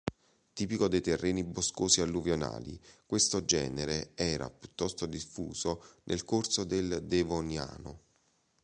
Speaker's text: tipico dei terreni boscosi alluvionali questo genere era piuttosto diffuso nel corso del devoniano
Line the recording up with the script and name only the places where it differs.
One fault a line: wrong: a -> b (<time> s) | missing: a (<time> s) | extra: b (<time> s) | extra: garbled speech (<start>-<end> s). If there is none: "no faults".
no faults